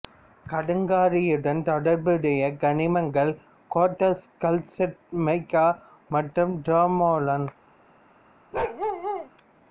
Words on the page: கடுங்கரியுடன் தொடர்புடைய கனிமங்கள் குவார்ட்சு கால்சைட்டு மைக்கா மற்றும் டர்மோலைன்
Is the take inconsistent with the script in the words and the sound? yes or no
yes